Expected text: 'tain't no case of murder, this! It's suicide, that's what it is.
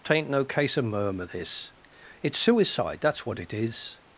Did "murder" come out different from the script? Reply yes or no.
yes